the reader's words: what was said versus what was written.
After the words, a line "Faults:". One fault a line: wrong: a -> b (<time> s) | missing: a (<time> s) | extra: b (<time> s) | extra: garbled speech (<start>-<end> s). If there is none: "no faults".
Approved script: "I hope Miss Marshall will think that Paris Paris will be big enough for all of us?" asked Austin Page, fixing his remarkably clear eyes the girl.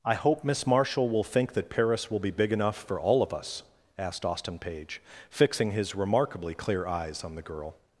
"I hope Miss Marshall will think that Paris will be big enough for all of us?" asked Austin Page, fixing his remarkably clear eyes on the girl.
Faults:
missing: Paris (2.1 s)
extra: on (7.2 s)